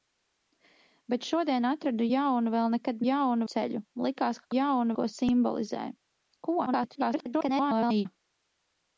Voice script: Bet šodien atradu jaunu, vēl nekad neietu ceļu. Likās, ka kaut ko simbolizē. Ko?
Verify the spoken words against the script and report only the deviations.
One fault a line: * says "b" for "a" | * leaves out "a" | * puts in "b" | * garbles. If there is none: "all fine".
* says "jaunu" for "neietu"
* says "jaunu" for "kaut"
* garbles